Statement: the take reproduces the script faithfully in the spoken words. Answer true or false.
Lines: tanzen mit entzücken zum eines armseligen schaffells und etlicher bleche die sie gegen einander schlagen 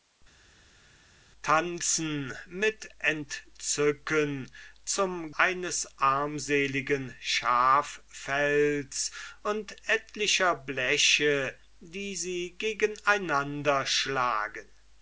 true